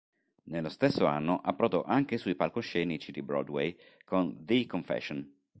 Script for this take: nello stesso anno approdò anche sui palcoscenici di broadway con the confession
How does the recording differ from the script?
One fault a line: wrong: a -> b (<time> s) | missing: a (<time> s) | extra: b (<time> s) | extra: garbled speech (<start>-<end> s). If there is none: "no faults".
no faults